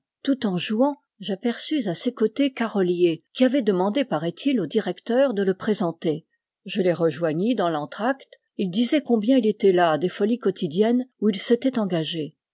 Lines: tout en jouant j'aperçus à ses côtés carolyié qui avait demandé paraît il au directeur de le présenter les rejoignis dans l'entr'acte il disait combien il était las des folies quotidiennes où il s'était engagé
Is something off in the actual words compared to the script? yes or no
yes